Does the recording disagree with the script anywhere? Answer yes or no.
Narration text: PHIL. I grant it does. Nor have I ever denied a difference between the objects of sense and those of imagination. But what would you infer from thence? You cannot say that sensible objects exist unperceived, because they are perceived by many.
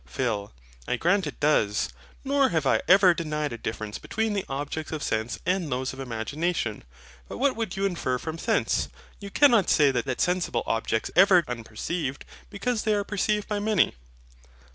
yes